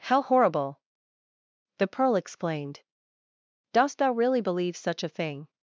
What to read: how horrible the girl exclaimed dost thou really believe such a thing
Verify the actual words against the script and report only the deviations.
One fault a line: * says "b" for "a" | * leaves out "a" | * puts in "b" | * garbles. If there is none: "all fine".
* says "pearl" for "girl"